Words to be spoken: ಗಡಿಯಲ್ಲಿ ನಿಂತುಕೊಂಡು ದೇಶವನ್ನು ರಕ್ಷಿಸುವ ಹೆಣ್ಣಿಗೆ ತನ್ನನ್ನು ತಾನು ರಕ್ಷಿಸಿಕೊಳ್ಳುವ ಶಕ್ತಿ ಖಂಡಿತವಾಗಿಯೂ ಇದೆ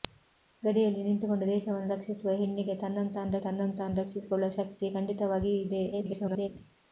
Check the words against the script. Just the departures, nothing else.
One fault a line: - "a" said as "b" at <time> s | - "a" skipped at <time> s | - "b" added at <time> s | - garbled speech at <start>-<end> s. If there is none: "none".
- "ತನ್ನನ್ನು ತಾನು" added at 3.4 s
- garbled speech at 5.9-6.5 s